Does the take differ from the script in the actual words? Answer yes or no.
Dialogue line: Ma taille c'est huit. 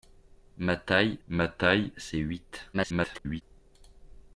yes